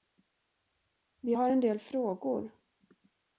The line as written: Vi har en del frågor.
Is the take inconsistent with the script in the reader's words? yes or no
no